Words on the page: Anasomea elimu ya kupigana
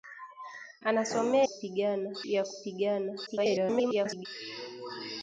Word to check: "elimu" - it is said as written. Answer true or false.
false